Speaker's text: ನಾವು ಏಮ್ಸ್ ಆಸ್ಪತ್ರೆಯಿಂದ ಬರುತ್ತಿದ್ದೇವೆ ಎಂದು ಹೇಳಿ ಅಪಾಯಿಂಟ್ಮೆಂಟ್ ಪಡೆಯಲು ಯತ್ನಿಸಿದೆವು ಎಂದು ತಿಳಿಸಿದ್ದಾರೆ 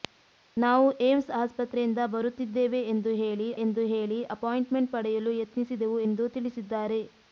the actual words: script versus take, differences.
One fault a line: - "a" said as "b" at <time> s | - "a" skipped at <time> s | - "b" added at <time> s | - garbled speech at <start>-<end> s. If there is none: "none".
- "ಎಂದು ಹೇಳಿ" added at 3.6 s